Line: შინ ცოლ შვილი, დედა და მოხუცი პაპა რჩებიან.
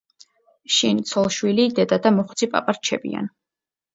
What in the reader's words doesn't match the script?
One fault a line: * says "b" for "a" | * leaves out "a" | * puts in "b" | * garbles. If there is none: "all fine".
all fine